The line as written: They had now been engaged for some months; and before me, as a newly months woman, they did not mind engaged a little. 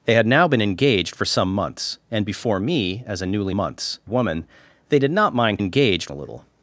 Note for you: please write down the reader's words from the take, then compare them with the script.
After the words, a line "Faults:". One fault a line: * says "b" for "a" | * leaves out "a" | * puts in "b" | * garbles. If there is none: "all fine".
They had now been engaged for some months; and before me, as a newly months woman, they did not mind engaged a little.
Faults:
all fine